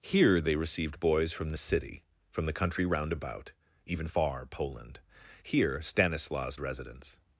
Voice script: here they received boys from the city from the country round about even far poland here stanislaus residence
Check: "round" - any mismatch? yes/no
no